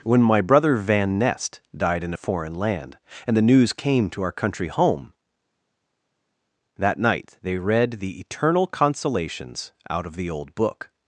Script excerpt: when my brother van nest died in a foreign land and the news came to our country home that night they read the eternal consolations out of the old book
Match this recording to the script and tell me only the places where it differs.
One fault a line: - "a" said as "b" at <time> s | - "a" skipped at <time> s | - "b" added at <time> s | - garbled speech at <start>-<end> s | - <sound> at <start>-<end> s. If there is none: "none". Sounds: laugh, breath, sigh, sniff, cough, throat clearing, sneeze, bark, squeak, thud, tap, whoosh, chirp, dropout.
none